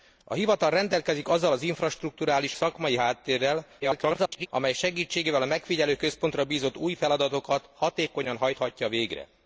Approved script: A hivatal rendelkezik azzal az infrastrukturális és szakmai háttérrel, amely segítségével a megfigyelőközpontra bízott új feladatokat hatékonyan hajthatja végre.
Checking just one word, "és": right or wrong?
wrong